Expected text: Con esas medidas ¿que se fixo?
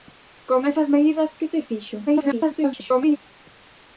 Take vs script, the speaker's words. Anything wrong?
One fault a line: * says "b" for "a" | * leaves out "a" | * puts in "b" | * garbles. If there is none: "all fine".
* garbles